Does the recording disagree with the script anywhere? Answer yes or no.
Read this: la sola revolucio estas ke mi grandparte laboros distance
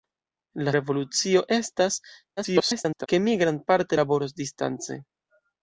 yes